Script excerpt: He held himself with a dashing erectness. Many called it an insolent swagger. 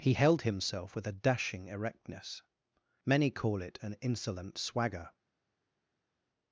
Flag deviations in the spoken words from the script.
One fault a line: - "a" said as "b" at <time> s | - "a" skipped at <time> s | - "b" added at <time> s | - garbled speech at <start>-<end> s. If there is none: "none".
- "called" said as "call" at 3.3 s